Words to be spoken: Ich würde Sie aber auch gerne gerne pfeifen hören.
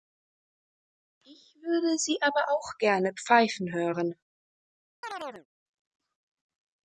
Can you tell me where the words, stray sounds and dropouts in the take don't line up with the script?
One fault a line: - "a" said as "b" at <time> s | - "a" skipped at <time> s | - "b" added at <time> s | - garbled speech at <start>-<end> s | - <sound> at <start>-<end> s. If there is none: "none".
- "gerne" skipped at 3.1 s
- chirp at 5.0-5.5 s